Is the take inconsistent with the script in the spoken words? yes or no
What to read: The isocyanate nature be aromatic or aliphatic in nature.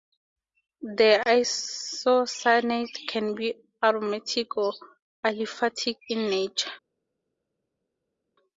yes